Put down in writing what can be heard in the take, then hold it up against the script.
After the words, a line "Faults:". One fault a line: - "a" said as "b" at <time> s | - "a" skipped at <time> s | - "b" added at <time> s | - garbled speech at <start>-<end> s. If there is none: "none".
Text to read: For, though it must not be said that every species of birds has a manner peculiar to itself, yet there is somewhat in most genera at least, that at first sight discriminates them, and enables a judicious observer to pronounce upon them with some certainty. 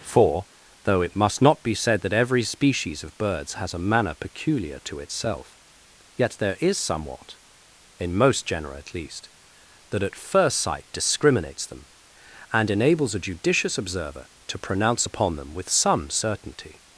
For, though it must not be said that every species of birds has a manner peculiar to itself, yet there is somewhat in most genera at least, that at first sight discriminates them, and enables a judicious observer to pronounce upon them with some certainty.
Faults:
none